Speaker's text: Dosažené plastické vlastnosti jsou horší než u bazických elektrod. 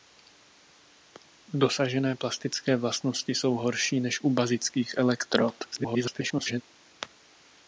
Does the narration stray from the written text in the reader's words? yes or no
yes